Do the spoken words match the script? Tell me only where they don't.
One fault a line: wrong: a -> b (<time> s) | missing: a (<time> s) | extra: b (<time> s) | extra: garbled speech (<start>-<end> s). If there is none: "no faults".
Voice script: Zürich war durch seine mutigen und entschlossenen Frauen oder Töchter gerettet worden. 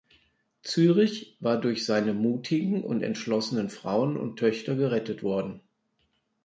wrong: oder -> und (4.2 s)